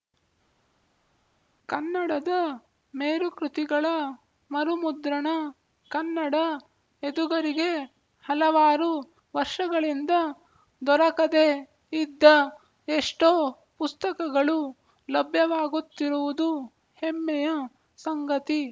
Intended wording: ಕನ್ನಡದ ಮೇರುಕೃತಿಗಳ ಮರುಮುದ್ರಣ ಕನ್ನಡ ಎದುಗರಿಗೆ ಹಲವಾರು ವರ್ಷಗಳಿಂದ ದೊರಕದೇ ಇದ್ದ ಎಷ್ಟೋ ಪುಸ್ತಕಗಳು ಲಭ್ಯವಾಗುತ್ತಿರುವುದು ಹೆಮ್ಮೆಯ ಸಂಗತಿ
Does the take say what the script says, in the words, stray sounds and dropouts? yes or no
yes